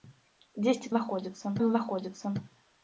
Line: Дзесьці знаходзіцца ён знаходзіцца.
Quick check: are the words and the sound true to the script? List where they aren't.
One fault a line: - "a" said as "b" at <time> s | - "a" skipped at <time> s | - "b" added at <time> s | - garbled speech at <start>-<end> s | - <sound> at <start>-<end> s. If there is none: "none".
none